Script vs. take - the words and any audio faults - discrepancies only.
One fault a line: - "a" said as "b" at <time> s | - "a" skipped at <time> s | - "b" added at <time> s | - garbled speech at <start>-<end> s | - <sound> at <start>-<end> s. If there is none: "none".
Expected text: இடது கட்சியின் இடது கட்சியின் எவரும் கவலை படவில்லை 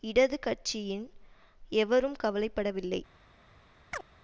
- "இடது கட்சியின்" skipped at 1.0 s
- chirp at 3.9-4.1 s